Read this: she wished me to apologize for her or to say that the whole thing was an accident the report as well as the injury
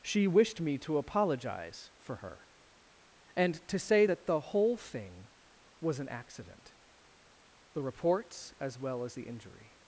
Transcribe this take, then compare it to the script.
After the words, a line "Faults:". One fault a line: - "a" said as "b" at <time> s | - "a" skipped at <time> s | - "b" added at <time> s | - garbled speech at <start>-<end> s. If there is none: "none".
she wished me to apologize for her and to say that the whole thing was an accident the reports as well as the injury
Faults:
- "or" said as "and" at 3.4 s
- "report" said as "reports" at 7.8 s